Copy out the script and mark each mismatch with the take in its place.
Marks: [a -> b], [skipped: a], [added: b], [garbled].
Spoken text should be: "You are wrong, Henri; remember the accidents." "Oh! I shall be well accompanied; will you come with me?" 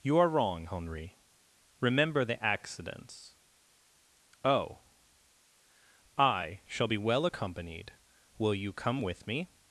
"You are wrong, Henri; remember the accidents." "Oh! I shall be well accompanied; will you come with me?"